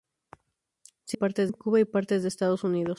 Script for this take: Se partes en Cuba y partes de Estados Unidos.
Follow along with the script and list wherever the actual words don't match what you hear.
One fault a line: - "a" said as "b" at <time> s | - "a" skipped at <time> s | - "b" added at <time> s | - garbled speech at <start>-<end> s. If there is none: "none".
none